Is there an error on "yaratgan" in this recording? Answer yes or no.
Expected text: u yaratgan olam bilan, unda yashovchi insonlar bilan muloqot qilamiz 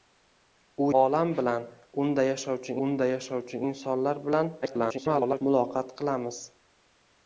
yes